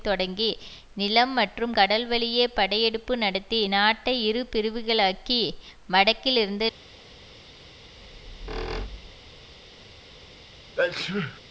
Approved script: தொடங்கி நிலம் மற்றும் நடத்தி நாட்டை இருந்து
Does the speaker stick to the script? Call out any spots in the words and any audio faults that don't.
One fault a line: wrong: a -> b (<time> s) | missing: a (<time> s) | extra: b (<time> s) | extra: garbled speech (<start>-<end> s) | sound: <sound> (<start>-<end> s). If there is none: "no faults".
extra: கடல்வழியே படையெடுப்பு (1.7 s)
extra: இரு பிரிவுகளாக்கி வடக்கில் (4.2 s)
sound: squeak (8.0-9.5 s)
sound: sneeze (10.8-11.4 s)